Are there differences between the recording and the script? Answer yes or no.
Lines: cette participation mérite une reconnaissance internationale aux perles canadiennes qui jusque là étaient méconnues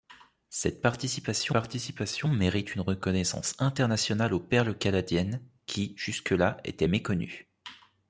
yes